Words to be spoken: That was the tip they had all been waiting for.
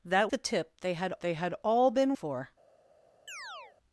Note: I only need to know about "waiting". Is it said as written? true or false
false